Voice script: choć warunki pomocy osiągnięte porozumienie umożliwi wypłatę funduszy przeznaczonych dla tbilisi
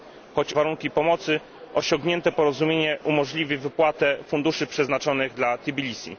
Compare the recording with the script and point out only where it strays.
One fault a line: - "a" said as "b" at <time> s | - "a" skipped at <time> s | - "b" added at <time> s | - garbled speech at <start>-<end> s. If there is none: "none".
none